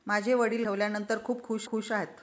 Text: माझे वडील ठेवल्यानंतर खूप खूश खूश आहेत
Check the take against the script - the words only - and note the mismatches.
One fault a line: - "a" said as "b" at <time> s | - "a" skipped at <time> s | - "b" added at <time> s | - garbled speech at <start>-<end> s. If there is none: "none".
none